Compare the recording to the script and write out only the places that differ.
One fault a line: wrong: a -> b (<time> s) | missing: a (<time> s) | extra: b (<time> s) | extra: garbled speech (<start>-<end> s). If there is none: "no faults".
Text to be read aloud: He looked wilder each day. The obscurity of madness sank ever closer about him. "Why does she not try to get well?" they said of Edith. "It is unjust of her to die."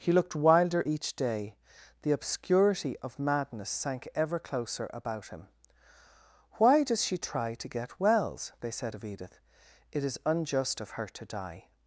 missing: not (7.2 s)
wrong: well -> wells (8.0 s)